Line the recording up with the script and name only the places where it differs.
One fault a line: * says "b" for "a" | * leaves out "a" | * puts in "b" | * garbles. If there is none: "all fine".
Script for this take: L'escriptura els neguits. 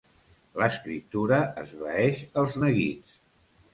* puts in "esvaeix"